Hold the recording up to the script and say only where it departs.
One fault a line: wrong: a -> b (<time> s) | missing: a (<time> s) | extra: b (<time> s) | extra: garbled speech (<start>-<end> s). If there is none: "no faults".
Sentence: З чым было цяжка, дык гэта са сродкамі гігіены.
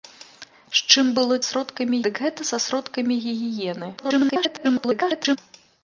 wrong: цяжка -> сродкамі (1.5 s)
extra: garbled speech (4.0-5.4 s)